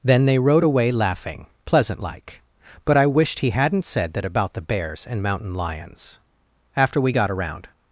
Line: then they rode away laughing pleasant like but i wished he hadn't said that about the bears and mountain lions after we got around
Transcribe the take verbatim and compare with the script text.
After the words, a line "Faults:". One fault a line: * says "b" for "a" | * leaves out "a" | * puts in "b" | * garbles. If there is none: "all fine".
then they rode away laughing pleasant like but i wished he hadn't said that about the bears and mountain lions after we got around
Faults:
all fine